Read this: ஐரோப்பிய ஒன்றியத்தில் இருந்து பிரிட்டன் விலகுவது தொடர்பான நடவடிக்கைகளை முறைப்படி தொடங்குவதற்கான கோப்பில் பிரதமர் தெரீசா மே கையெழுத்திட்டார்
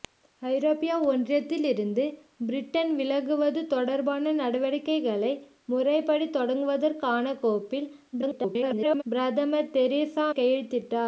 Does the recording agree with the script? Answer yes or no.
no